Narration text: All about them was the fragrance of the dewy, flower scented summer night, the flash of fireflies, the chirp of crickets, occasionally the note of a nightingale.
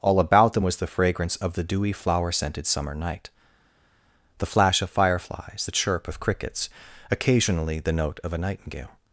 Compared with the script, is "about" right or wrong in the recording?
right